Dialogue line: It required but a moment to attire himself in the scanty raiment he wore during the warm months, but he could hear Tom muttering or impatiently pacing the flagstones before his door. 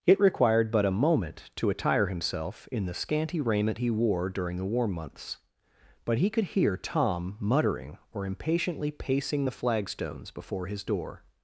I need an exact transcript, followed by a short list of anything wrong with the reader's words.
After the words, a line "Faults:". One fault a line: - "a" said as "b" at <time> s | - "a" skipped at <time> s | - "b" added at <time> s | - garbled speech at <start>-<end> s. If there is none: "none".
It required but a moment to attire himself in the scanty raiment he wore during the warm months, but he could hear Tom muttering or impatiently pacing the flagstones before his door.
Faults:
none